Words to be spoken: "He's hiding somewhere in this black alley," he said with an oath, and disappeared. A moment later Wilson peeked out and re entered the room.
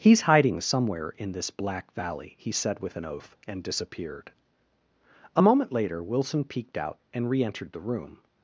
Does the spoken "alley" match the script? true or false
false